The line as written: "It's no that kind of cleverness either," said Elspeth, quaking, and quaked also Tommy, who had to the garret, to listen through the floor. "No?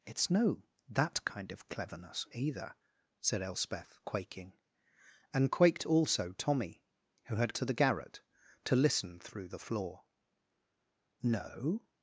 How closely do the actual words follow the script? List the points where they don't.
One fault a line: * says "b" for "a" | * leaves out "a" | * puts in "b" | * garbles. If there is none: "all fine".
all fine